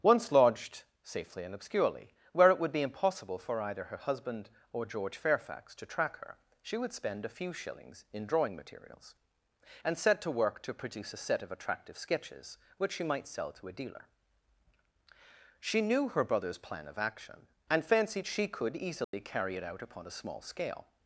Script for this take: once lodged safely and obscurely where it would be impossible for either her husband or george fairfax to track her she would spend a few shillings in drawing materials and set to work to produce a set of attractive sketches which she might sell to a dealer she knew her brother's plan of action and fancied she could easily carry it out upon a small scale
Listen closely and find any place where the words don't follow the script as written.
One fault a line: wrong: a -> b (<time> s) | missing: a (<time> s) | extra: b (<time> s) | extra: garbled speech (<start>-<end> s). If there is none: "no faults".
no faults